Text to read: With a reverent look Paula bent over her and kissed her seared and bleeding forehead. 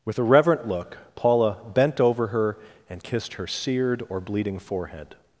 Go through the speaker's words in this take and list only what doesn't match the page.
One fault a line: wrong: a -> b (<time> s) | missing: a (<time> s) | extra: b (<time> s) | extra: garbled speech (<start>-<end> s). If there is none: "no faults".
wrong: and -> or (4.1 s)